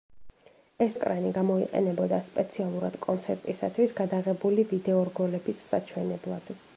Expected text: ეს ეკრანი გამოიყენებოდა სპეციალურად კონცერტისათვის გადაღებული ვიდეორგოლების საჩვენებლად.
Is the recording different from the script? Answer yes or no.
no